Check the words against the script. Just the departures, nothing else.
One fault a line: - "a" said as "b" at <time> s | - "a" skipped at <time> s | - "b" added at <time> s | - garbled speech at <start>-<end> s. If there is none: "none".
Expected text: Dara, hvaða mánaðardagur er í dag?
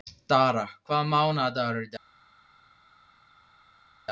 none